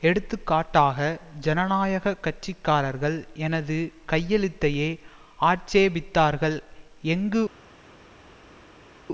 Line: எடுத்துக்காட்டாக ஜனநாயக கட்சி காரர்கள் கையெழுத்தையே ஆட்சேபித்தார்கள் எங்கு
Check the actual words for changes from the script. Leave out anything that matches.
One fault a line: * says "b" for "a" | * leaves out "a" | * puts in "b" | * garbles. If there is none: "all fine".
* puts in "எனது"